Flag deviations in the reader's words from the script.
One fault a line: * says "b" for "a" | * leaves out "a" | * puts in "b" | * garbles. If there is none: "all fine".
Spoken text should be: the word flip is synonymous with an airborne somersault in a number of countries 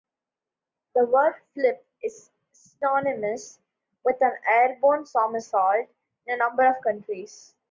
all fine